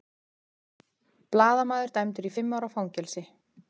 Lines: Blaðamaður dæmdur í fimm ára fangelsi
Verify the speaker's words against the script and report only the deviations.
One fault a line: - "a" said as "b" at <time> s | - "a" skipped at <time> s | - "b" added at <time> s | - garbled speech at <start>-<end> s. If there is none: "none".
none